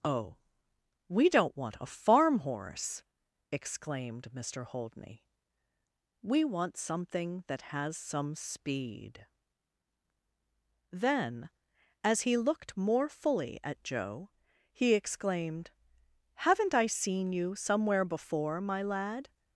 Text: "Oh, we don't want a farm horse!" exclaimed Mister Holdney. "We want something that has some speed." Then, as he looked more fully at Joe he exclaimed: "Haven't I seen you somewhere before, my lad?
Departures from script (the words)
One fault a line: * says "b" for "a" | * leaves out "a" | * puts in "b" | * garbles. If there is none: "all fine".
all fine